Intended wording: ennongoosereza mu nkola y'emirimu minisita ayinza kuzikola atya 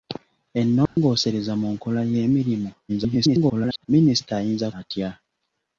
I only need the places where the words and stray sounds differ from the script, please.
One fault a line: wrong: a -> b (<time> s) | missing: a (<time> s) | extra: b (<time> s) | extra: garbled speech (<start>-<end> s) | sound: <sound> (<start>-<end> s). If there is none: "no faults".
sound: dropout (0.9-1.0 s)
extra: garbled speech (2.9-3.9 s)
missing: kuzikola (4.7 s)